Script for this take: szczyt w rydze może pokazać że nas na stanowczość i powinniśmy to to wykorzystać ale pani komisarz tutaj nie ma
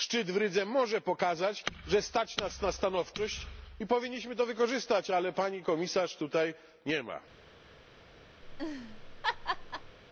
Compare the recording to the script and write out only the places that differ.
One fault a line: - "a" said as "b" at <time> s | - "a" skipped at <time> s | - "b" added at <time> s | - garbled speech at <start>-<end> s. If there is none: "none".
- "stać" added at 2.0 s
- "to" skipped at 4.5 s